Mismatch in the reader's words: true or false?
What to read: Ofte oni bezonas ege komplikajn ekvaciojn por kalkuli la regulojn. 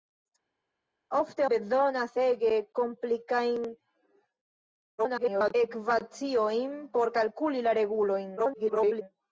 true